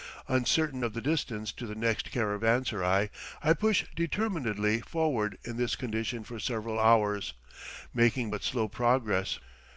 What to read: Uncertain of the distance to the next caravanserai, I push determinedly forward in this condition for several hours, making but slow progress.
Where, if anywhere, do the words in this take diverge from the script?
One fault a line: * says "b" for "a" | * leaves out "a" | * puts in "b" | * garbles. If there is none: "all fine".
all fine